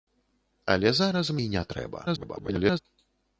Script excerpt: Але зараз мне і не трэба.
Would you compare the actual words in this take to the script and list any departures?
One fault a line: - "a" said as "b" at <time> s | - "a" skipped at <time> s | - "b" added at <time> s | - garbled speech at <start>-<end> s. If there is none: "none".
- "мне" skipped at 1.3 s
- garbled speech at 2.1-2.8 s